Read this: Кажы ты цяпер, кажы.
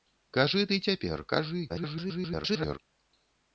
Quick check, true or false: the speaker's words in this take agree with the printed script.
false